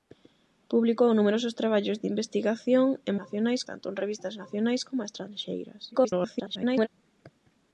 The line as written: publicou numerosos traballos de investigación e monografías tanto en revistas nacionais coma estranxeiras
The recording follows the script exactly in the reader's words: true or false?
false